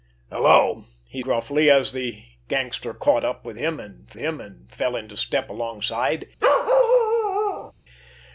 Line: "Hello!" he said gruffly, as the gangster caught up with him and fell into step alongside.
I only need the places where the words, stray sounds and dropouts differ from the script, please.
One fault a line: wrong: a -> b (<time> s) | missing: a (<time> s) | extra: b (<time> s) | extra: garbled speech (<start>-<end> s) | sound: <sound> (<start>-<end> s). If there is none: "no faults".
missing: said (1.2 s)
extra: him and (4.2 s)
sound: bark (6.4-7.7 s)